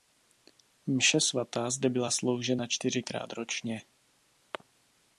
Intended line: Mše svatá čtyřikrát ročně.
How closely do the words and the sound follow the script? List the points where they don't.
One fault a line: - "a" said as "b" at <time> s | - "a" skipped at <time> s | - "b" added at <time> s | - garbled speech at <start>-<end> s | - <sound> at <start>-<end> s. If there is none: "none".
- "zde byla sloužena" added at 1.7 s